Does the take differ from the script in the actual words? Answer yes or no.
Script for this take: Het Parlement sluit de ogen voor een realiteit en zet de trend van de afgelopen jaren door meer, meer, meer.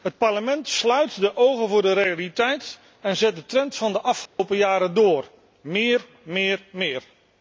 yes